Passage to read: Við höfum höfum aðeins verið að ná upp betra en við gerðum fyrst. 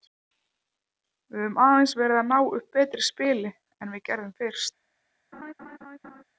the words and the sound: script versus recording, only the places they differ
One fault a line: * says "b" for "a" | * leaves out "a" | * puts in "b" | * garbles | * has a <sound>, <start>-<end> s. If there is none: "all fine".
* leaves out "höfum"
* puts in "spili"
* has a laugh, 5.3-6.2 s